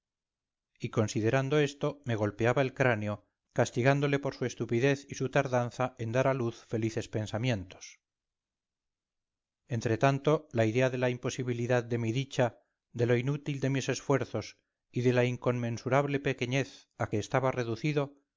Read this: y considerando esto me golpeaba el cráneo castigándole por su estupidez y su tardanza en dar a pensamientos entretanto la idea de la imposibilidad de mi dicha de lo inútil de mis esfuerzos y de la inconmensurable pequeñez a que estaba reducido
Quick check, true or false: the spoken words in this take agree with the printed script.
false